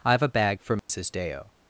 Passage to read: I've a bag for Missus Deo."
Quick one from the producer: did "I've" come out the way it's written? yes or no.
yes